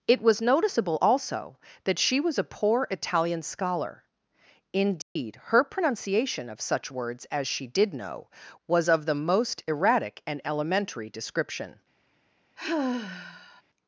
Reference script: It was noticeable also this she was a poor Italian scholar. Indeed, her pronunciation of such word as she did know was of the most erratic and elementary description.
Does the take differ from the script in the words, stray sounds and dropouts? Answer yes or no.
yes